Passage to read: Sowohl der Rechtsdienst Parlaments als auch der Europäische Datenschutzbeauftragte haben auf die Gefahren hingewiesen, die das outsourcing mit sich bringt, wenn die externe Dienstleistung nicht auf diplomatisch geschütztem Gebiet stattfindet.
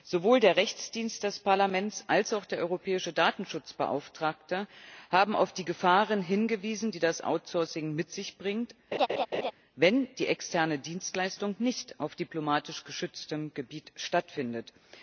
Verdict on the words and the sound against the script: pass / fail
fail